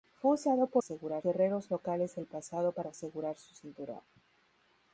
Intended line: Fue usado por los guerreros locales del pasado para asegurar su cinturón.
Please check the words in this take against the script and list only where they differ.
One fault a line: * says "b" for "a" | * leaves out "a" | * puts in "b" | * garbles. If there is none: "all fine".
* says "asegurar" for "los"